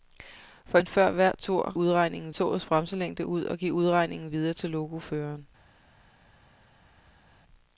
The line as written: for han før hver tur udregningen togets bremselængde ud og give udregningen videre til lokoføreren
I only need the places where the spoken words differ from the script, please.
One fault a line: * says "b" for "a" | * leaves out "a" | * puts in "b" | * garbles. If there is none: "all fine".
all fine